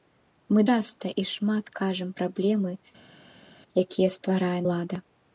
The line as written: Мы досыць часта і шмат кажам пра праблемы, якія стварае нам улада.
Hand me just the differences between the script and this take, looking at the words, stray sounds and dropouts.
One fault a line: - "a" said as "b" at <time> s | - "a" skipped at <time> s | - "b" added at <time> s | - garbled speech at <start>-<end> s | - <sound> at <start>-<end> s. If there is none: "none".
- "досыць" skipped at 0.6 s
- "пра" skipped at 2.1 s
- "нам" skipped at 4.6 s